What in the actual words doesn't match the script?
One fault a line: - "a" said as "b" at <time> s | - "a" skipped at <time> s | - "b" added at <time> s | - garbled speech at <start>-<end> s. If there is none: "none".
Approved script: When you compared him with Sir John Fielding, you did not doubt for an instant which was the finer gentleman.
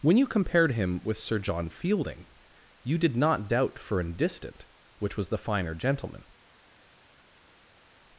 - "instant" said as "distant" at 4.1 s